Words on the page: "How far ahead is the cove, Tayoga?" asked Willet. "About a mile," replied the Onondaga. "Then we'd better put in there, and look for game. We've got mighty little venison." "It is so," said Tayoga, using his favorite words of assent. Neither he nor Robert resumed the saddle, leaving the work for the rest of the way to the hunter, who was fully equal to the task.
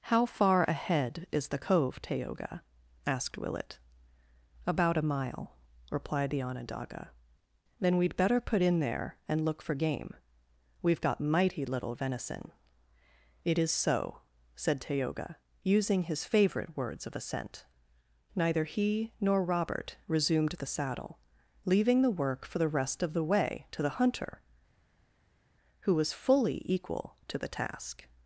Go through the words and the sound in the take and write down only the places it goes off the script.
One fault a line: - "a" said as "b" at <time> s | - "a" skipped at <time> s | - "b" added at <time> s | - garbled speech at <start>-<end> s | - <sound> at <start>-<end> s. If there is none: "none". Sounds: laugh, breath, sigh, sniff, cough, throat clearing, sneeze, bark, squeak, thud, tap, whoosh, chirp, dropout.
none